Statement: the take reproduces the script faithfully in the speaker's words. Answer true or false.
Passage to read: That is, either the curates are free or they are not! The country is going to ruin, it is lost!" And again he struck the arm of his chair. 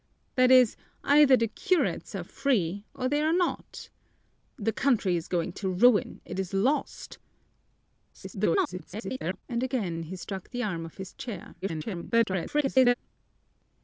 false